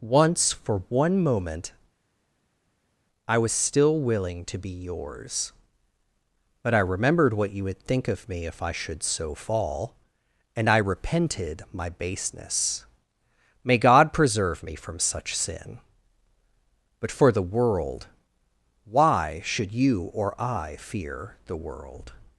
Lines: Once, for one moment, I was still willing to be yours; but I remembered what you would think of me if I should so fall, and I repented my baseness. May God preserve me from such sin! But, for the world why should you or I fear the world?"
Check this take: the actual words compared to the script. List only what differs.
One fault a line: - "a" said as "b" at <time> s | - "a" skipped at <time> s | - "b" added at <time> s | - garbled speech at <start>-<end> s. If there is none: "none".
none